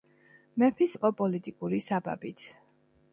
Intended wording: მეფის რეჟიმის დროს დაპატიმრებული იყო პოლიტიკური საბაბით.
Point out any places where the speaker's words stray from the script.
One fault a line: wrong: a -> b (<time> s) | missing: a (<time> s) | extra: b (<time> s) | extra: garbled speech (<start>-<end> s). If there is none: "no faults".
missing: რეჟიმის დროს დაპატიმრებული (0.9 s)